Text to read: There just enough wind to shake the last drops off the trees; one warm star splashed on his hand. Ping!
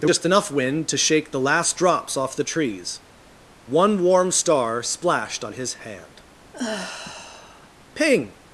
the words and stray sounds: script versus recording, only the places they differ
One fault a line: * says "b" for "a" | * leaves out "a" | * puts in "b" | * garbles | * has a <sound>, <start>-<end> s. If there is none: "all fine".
* has a sigh, 6.5-7.7 s